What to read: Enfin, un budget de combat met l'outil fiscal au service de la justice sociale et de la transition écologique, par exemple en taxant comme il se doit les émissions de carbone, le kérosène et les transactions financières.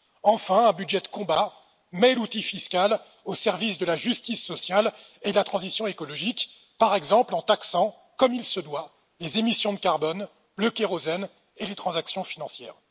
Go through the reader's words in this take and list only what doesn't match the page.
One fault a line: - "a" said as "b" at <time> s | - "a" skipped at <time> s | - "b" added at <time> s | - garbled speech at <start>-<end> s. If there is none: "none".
none